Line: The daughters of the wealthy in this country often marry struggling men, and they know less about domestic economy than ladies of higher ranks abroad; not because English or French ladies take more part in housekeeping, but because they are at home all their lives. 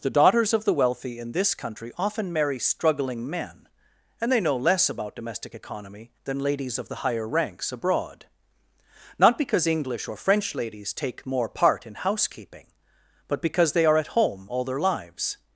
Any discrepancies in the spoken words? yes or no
yes